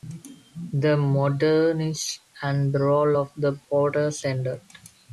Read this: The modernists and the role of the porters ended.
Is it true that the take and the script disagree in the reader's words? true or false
false